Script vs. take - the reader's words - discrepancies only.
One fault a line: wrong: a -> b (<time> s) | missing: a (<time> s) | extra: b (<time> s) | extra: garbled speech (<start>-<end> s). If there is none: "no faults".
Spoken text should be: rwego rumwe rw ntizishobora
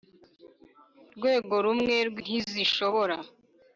no faults